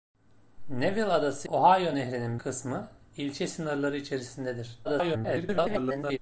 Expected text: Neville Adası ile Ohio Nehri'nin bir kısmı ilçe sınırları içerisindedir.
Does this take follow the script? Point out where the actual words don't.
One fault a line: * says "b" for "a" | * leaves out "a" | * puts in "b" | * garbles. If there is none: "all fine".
* leaves out "ile"
* leaves out "bir"
* garbles